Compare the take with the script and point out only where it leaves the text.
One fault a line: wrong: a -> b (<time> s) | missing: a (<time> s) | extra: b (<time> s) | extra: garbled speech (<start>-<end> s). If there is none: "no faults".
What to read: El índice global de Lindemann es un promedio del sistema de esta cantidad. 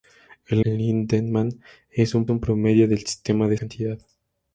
missing: índice global de (0.7 s)
extra: un (2.3 s)
missing: esta (3.6 s)